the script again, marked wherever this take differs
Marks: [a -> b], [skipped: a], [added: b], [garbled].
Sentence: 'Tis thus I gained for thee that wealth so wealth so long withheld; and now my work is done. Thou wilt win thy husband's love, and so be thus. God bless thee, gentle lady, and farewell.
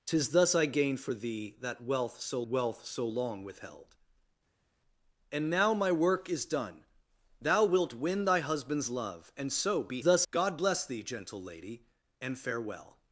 'Tis thus I gained for thee that wealth so wealth so long withheld; and now my work is done. Thou wilt win thy husband's love, and so be thus. God bless thee, gentle lady, and farewell.